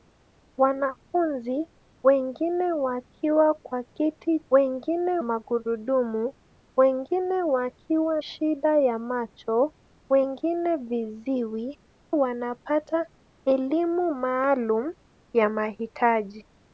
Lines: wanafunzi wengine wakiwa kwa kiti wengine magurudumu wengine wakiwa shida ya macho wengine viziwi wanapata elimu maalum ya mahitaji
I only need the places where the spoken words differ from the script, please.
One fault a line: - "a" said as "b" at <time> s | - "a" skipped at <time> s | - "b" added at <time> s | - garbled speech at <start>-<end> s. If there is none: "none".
none